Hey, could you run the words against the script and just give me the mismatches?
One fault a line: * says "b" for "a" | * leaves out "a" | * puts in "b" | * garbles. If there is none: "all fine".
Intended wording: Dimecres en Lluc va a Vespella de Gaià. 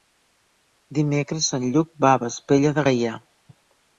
all fine